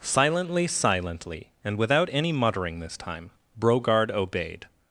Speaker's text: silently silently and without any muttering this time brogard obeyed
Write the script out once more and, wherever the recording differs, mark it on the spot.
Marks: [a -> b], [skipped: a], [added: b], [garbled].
silently silently and without any muttering this time brogard obeyed